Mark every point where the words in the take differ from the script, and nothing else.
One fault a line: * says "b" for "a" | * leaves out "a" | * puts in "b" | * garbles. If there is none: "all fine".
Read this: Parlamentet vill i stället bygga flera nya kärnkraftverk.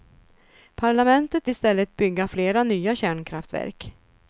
* leaves out "vill"